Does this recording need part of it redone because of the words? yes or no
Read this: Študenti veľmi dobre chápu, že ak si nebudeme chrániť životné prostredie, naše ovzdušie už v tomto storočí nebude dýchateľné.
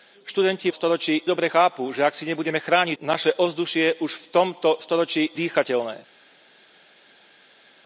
yes